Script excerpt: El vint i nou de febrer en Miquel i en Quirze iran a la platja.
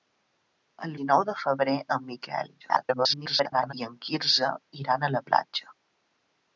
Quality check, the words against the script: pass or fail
fail